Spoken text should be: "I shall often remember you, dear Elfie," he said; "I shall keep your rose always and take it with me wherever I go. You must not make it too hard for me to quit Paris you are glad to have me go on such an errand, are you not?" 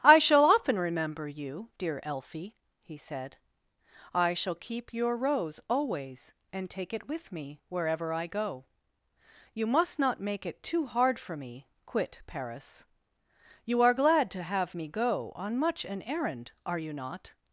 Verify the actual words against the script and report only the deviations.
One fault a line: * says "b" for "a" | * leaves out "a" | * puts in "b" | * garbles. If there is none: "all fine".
* leaves out "to"
* says "much" for "such"